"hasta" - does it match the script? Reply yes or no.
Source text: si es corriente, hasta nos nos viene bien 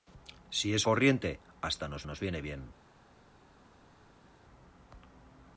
yes